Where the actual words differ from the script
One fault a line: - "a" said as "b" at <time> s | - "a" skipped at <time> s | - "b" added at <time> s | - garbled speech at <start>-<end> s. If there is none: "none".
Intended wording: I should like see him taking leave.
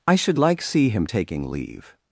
none